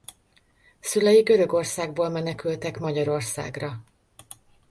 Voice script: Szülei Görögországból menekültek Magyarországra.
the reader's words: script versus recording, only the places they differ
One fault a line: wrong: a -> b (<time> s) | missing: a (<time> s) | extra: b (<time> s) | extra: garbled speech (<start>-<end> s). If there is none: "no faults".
no faults